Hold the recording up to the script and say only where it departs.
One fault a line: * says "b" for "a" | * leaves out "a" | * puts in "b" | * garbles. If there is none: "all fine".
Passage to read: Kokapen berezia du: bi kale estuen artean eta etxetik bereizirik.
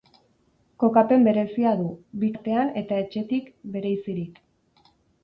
* leaves out "kale estuen"